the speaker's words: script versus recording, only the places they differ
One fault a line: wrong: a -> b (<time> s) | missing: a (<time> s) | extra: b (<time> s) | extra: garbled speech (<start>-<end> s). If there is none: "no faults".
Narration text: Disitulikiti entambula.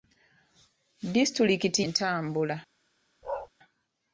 no faults